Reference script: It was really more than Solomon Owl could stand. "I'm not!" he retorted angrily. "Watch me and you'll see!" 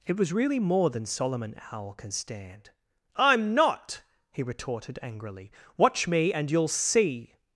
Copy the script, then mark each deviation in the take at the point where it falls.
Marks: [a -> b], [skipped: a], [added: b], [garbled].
It was really more than Solomon Owl [could -> can] stand. "I'm not!" he retorted angrily. "Watch me and you'll see!"